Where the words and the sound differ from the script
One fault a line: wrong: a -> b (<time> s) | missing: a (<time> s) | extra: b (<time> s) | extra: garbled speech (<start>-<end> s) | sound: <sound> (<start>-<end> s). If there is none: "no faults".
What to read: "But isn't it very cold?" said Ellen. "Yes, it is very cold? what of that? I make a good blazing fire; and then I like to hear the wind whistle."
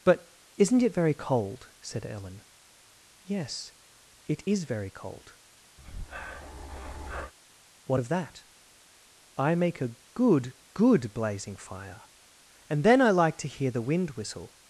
sound: breath (5.8-7.3 s)
extra: good (10.7 s)